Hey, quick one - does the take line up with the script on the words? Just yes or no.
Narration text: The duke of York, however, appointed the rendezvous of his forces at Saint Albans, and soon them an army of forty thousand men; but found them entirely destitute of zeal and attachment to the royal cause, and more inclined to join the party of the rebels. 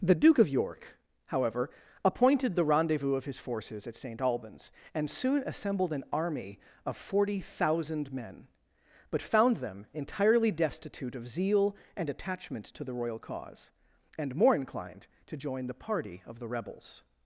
no